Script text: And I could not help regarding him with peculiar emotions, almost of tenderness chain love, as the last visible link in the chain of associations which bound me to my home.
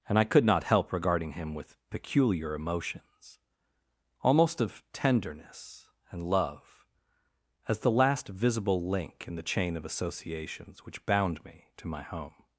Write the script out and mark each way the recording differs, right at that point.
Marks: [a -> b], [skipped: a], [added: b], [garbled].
And I could not help regarding him with peculiar emotions, almost of tenderness [chain -> and] love, as the last visible link in the chain of associations which bound me to my home.